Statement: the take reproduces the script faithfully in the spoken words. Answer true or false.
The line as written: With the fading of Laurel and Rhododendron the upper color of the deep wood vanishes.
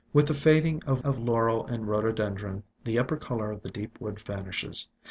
false